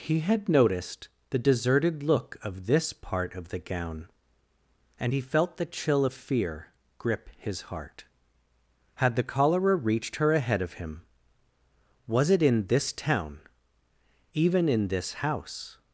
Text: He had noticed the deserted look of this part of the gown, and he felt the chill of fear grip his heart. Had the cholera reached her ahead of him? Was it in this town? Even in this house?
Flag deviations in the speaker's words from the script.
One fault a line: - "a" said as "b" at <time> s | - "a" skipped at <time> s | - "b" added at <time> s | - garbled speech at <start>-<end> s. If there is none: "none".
none